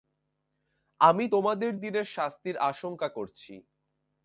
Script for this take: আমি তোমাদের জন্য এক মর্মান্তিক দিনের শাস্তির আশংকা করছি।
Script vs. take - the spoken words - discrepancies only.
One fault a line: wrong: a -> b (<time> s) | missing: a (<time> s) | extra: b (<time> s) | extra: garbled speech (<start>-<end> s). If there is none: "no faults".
missing: জন্য এক মর্মান্তিক (1.7 s)